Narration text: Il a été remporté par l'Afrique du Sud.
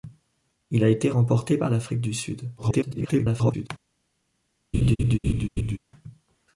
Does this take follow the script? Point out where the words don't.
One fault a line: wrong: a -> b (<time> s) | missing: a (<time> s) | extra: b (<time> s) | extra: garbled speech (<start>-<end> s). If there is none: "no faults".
extra: garbled speech (2.6-3.7 s)